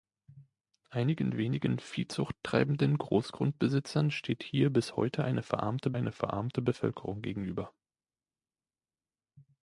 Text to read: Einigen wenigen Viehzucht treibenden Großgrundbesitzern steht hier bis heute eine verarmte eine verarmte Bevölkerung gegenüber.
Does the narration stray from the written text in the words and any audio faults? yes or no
no